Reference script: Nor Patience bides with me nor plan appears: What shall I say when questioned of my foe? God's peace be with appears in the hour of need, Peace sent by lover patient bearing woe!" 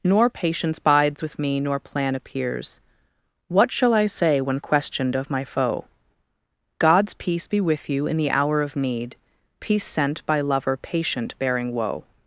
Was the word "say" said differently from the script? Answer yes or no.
no